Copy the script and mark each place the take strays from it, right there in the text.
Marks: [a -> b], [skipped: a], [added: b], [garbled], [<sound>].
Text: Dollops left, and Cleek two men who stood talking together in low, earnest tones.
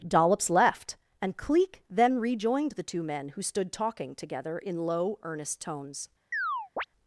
Dollops left, and Cleek [added: then rejoined the] two men who stood talking together in low, earnest tones. [chirp]